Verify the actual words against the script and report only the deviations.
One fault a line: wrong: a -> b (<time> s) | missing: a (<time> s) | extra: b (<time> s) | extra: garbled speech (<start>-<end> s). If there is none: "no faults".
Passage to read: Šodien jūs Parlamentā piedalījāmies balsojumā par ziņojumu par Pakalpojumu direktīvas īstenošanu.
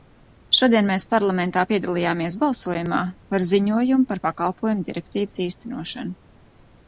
wrong: jūs -> mēs (0.9 s)